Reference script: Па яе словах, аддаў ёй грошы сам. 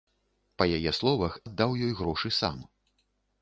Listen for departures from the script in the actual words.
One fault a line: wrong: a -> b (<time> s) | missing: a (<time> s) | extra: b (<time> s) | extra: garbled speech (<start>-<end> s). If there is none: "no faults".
no faults